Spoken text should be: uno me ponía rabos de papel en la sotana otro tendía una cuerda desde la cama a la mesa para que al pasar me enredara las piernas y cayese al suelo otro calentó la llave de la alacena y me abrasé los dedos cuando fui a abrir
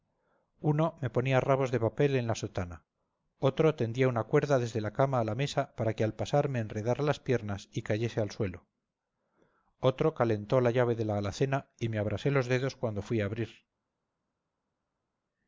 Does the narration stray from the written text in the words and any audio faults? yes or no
no